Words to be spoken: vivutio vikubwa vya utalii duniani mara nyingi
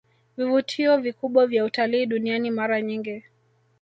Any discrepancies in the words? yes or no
no